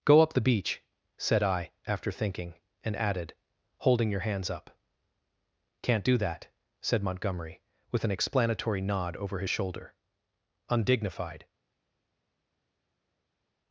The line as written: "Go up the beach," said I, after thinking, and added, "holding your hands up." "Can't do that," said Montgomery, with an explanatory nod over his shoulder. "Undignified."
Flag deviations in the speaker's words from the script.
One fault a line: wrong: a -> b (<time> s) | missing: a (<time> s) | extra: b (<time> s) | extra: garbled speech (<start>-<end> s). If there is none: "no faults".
no faults